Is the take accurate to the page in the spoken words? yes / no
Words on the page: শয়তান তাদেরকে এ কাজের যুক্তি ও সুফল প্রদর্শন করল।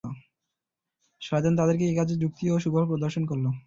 yes